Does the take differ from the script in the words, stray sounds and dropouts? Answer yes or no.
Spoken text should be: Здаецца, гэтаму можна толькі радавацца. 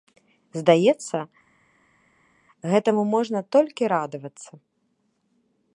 no